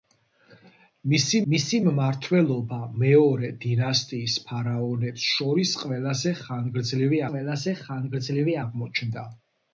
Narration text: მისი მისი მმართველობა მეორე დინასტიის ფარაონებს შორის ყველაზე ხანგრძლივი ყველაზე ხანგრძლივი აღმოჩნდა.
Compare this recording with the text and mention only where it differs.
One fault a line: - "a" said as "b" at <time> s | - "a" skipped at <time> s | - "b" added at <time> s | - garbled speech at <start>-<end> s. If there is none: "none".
none